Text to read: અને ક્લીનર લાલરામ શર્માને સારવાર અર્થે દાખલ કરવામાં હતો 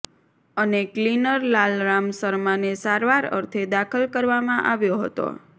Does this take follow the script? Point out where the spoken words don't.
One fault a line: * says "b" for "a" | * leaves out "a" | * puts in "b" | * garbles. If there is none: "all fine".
* puts in "આવ્યો"